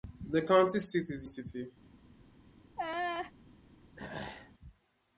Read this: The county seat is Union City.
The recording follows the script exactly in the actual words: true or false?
false